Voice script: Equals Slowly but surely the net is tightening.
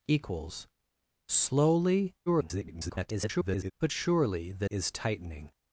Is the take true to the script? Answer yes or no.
no